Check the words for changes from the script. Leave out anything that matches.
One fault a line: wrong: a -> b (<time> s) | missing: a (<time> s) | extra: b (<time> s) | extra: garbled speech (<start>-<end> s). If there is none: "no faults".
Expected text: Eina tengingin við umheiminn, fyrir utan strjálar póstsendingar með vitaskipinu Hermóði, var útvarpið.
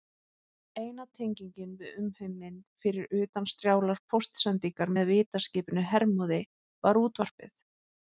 no faults